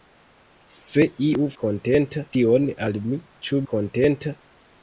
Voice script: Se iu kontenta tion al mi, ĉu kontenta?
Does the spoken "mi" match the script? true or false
true